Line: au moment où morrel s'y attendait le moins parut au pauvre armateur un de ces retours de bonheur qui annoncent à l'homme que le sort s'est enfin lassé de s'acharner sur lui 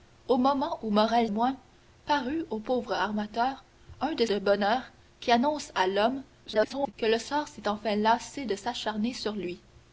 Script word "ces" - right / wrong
wrong